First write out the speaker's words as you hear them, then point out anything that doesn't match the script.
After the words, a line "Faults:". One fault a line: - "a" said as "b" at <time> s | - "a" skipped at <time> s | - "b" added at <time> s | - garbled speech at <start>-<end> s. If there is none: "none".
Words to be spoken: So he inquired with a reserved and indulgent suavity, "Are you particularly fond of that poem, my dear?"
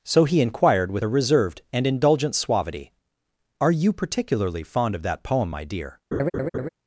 So he inquired with a reserved and indulgent suavity, "Are you particularly fond of that poem, my dear?"
Faults:
none